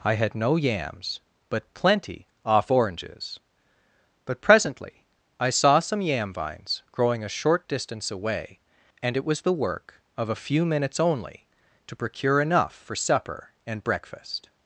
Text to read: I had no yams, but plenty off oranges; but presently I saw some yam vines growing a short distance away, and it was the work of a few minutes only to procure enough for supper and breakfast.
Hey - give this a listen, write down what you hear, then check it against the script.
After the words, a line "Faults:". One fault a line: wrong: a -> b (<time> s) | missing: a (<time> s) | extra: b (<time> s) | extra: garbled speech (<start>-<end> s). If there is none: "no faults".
I had no yams, but plenty off oranges; but presently I saw some yam vines growing a short distance away, and it was the work of a few minutes only to procure enough for supper and breakfast.
Faults:
no faults